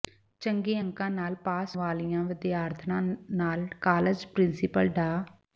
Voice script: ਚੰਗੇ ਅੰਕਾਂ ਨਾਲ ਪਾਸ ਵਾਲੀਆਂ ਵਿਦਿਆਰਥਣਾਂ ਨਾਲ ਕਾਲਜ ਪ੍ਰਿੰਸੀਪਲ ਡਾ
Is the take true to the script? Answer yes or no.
yes